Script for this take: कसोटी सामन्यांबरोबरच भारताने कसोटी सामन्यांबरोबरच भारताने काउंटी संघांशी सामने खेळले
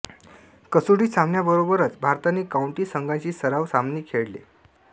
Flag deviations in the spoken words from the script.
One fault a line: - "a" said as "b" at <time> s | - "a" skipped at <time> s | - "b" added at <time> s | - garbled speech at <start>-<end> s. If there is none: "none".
- "कसोटी सामन्यांबरोबरच भारताने" skipped at 2.4 s
- "सराव" added at 3.3 s